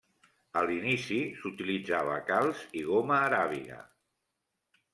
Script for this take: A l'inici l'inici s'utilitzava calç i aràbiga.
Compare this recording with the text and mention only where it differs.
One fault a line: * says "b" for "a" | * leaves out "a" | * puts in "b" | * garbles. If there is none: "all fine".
* leaves out "l'inici"
* puts in "goma"